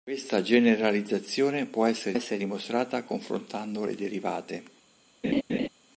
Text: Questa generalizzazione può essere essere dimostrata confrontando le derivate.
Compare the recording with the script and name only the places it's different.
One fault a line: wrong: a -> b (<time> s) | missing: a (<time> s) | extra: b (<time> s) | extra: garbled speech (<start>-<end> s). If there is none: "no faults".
no faults